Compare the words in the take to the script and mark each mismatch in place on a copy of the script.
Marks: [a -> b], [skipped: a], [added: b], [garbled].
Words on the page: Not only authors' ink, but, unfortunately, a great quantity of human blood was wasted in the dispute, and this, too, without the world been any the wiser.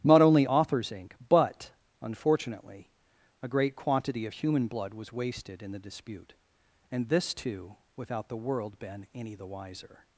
Not only authors' ink, but, unfortunately, a great quantity of human blood was wasted in the dispute, and this, too, without the world been any the wiser.